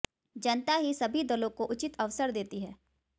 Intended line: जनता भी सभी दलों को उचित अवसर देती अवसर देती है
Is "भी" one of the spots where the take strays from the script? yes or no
yes